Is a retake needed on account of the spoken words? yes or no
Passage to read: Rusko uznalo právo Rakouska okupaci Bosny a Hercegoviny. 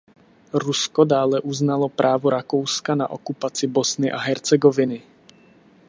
yes